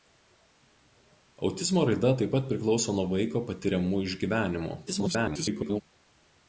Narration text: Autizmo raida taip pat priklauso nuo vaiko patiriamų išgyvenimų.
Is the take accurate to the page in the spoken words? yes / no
no